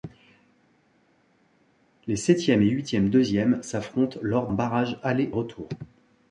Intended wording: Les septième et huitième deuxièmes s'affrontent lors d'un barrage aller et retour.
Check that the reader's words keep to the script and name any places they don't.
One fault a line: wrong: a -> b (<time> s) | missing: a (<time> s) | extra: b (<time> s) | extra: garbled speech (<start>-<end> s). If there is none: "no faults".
missing: d'un (4.5 s)
missing: et (5.3 s)